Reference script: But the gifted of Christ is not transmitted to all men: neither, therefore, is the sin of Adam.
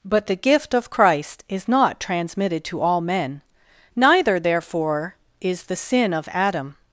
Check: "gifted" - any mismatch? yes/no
yes